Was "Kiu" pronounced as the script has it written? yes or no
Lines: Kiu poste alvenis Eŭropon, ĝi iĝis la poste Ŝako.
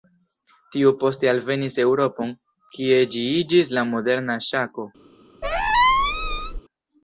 no